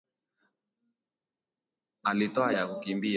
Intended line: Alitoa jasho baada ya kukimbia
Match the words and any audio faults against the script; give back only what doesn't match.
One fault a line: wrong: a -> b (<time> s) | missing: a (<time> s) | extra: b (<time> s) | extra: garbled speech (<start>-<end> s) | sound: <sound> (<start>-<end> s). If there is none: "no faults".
missing: jasho baada (2.6 s)